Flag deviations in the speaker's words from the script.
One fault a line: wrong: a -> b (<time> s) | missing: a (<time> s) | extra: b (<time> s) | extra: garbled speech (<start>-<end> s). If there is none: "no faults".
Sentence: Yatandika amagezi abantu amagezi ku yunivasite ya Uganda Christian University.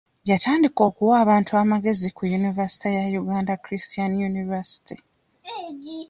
wrong: amagezi -> okuwa (0.9 s)